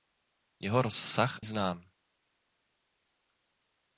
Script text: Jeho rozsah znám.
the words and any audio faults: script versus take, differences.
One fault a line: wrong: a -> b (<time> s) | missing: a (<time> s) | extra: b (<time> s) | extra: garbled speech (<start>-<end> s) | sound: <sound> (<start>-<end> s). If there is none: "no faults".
no faults